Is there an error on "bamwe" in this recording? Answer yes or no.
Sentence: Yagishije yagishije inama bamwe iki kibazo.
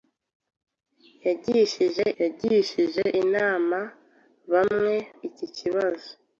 no